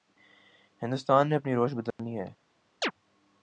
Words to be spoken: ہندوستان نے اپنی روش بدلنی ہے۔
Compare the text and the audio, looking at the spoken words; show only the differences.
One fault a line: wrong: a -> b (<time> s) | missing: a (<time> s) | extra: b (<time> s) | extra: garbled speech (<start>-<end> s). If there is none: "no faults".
no faults